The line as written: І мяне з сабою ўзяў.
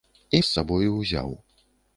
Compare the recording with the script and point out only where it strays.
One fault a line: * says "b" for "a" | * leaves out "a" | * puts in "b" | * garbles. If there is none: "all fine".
* leaves out "мяне"